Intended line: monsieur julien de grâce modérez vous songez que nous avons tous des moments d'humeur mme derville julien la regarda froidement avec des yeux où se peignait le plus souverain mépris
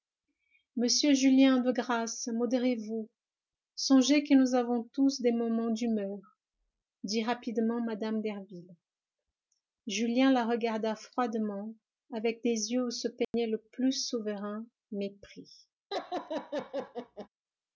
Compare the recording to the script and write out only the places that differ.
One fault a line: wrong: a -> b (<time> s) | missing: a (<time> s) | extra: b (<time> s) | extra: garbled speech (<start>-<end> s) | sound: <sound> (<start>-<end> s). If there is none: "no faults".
extra: dit rapidement (7.0 s)
sound: dropout (13.2-13.3 s)
sound: laugh (15.9-17.3 s)